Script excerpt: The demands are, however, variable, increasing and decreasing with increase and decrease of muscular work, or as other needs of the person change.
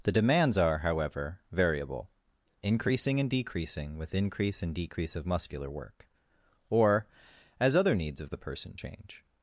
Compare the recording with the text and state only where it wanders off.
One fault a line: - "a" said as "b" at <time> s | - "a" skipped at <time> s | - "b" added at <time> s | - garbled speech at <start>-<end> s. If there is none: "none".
none